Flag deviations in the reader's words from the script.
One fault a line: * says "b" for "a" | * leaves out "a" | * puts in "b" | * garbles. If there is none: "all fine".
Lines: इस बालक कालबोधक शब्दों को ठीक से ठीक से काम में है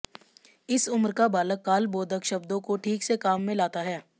* puts in "उम्र का"
* leaves out "ठीक से"
* puts in "लाता"